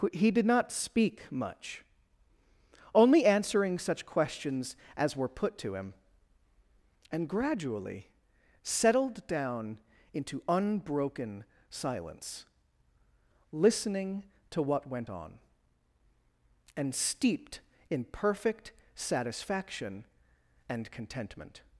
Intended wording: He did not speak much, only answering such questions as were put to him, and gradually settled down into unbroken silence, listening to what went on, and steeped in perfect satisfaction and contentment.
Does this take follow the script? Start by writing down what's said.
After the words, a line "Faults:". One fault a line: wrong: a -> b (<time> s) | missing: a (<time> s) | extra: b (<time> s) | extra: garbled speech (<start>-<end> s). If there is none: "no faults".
He did not speak much, only answering such questions as were put to him, and gradually settled down into unbroken silence, listening to what went on, and steeped in perfect satisfaction and contentment.
Faults:
no faults